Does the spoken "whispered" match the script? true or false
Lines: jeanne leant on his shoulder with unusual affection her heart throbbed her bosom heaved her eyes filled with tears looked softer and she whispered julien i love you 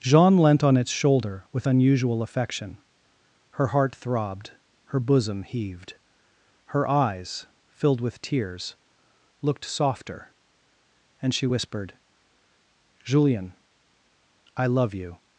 true